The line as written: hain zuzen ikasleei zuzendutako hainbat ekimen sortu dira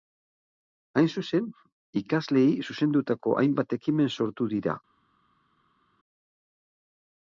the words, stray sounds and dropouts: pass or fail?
pass